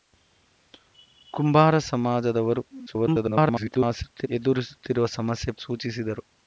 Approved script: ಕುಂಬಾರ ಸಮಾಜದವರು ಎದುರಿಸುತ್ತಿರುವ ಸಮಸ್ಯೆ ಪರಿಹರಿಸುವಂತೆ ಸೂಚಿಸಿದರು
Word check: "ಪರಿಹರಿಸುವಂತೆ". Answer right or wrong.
wrong